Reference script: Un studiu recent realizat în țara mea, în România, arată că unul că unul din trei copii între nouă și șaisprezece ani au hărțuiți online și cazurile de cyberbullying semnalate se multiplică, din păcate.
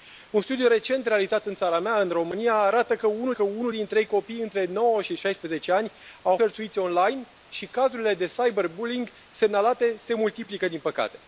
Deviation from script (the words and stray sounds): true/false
false